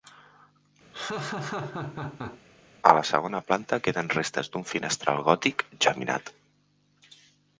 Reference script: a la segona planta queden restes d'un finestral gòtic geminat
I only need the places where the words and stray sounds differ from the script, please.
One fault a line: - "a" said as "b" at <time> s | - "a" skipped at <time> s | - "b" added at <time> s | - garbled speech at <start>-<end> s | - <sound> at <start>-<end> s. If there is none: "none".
- laugh at 0.9-2.4 s